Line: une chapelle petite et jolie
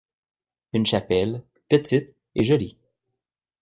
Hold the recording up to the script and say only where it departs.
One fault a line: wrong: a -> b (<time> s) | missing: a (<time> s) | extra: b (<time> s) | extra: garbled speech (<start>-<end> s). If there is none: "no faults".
no faults